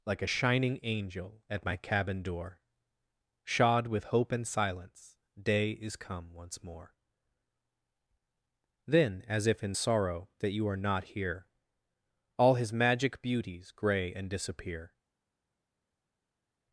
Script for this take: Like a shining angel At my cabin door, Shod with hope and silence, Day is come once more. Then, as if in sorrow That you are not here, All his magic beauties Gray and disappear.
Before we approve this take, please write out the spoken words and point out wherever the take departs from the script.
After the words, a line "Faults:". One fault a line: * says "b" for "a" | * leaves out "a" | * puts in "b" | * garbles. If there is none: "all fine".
Like a shining angel At my cabin door, Shod with hope and silence, Day is come once more. Then, as if in sorrow That you are not here, All his magic beauties Gray and disappear.
Faults:
all fine